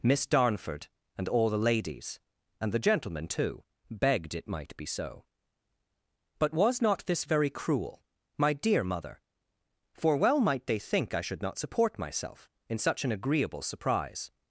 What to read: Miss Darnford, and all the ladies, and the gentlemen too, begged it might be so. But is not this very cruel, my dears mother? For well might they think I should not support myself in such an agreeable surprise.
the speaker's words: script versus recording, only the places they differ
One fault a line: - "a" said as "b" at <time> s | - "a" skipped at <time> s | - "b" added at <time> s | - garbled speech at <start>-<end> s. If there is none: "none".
- "is" said as "was" at 6.5 s
- "dears" said as "dear" at 8.5 s